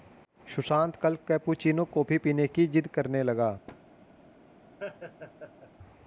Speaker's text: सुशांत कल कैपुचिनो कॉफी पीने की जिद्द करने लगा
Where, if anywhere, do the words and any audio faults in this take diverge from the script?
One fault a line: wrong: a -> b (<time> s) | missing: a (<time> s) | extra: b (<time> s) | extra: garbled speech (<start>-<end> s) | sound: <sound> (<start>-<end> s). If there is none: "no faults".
sound: thud (3.7-3.8 s)
sound: laugh (4.8-5.7 s)